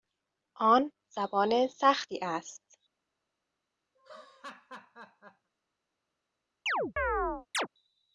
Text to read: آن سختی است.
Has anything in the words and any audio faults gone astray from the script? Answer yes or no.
yes